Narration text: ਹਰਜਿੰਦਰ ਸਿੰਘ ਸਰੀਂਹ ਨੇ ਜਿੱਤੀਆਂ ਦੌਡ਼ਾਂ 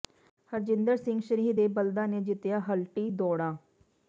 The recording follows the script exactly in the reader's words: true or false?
false